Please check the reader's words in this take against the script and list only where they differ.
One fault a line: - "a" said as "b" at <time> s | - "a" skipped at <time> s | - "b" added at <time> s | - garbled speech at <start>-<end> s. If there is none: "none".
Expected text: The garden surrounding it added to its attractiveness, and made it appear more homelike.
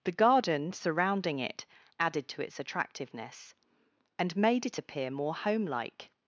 none